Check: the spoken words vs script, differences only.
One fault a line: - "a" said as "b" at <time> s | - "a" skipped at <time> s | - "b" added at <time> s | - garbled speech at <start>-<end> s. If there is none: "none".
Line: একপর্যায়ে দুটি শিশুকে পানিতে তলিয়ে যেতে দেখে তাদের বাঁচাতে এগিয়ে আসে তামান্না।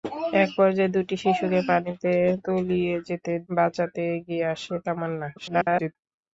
- "দেখে তাদের" skipped at 3.3 s
- garbled speech at 5.4-6.0 s